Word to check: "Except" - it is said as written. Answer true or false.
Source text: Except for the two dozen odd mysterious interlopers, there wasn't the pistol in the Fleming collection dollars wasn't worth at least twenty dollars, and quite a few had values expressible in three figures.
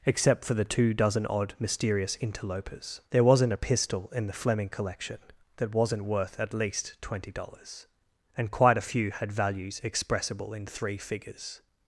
true